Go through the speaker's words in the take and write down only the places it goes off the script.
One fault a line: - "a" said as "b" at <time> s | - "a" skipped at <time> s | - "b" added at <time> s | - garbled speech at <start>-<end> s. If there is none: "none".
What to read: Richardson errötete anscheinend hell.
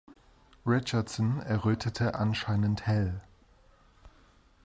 none